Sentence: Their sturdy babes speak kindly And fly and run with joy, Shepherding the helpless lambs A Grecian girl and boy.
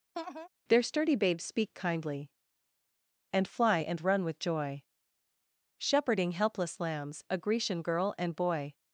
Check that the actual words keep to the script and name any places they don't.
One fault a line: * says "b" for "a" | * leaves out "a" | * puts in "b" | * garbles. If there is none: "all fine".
* leaves out "the"